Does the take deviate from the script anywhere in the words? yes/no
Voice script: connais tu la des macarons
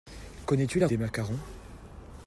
no